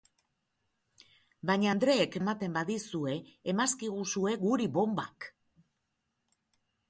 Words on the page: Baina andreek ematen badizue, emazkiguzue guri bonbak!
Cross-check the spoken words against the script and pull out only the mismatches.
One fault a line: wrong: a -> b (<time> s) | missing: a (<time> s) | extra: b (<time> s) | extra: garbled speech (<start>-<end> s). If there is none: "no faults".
no faults